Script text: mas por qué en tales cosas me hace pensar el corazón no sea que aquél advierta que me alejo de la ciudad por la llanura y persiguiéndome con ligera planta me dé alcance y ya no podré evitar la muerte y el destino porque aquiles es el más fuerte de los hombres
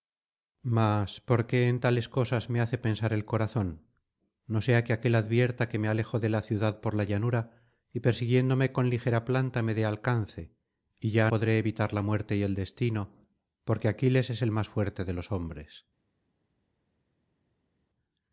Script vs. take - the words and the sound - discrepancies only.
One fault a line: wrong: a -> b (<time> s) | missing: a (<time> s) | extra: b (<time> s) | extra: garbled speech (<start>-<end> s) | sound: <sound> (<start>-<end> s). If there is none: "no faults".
missing: no (11.3 s)